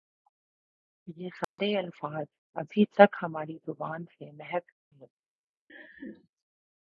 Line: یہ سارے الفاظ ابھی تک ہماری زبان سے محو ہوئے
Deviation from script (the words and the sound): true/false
true